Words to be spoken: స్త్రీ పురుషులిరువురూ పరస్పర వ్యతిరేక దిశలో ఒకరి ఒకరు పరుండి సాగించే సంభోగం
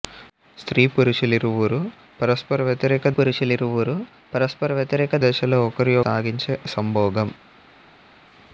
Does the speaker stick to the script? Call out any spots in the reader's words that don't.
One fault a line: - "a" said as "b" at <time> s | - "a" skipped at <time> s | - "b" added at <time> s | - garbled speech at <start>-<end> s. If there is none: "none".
- "పురుషులిరువురూ పరస్పర వ్యతిరేక" added at 3.1 s
- "ఒకరు పరుండి" skipped at 6.0 s